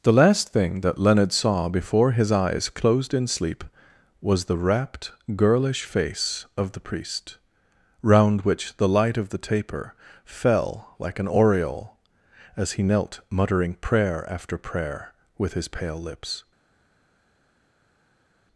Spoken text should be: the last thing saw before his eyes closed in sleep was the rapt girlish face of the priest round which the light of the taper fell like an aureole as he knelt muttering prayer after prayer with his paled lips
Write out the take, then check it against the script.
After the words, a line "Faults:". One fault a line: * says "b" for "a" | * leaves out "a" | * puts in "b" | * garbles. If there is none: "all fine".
the last thing that leonard saw before his eyes closed in sleep was the rapt girlish face of the priest round which the light of the taper fell like an aureole as he knelt muttering prayer after prayer with his pale lips
Faults:
* puts in "that leonard"
* says "pale" for "paled"